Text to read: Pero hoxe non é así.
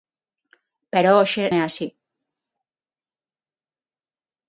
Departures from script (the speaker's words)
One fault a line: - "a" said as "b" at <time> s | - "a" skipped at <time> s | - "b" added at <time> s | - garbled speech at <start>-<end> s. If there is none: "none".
- "non" skipped at 1.4 s